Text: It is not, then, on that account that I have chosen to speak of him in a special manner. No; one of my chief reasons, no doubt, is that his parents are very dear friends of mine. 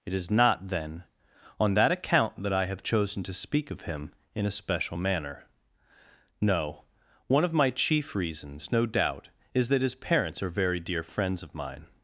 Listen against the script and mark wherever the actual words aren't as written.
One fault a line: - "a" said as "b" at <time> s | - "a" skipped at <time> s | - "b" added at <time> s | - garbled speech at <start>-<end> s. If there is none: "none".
none